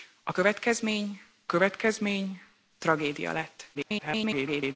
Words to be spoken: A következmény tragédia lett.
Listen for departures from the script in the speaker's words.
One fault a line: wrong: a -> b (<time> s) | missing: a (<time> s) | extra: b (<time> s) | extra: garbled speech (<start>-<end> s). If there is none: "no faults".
extra: következmény (1.5 s)
extra: garbled speech (3.7-4.8 s)